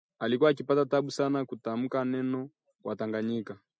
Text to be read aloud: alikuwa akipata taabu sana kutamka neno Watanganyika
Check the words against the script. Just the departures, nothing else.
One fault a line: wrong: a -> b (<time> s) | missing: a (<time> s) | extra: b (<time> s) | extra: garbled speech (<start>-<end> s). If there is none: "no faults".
no faults